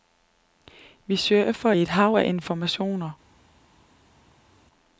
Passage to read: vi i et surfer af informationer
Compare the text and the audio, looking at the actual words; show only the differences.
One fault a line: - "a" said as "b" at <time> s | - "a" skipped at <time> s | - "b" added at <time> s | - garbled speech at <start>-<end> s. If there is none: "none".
- "surfer" added at 1.1 s
- "surfer" said as "hav" at 1.9 s